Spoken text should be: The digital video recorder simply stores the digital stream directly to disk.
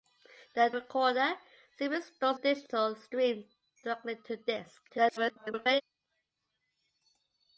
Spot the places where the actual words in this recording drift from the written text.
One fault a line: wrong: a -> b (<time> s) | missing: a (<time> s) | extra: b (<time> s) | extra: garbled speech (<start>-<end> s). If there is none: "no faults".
missing: digital video (0.7 s)
missing: the (2.4 s)
extra: garbled speech (4.9-5.8 s)